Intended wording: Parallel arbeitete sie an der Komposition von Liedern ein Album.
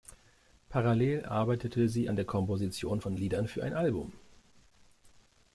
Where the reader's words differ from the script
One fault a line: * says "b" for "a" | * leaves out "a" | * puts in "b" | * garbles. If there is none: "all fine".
* puts in "für"